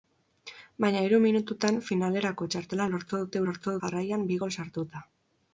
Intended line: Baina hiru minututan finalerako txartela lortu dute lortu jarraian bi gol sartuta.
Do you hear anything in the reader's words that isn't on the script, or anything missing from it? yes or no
no